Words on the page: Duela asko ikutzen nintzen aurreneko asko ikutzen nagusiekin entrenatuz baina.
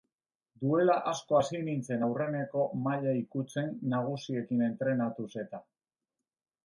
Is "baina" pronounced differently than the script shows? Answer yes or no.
yes